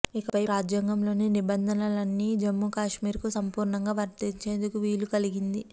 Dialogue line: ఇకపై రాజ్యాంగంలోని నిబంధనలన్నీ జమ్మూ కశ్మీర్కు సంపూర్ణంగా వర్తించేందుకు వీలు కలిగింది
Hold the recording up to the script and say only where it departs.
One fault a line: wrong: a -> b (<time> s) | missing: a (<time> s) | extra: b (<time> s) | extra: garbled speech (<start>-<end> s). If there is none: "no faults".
no faults